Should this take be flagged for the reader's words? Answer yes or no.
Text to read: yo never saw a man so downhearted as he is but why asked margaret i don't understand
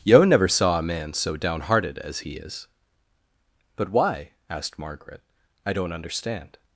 no